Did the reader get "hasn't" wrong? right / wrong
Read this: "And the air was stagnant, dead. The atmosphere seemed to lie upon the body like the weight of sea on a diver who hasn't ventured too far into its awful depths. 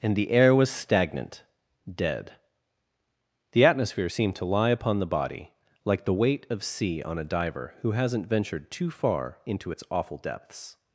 right